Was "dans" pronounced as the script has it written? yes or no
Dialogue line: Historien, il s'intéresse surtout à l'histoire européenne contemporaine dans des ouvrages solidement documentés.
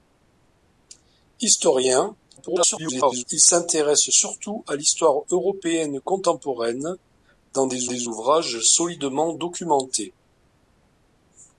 yes